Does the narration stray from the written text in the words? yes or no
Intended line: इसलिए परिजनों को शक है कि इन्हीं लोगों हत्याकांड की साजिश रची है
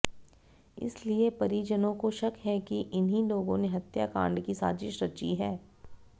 yes